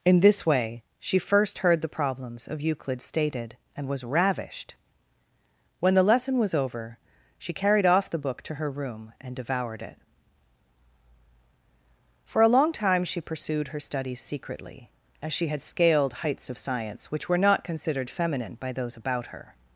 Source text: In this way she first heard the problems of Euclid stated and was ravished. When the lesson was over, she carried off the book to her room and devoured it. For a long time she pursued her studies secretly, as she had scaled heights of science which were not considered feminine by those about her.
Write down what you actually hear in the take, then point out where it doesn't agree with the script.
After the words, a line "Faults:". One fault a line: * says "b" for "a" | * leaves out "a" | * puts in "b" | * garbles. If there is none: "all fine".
In this way she first heard the problems of Euclid stated and was ravished. When the lesson was over, she carried off the book to her room and devoured it. For a long time she pursued her studies secretly, as she had scaled heights of science which were not considered feminine by those about her.
Faults:
all fine